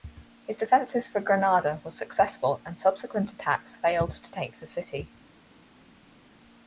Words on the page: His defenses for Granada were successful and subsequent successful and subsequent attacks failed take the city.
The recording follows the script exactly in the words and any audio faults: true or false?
false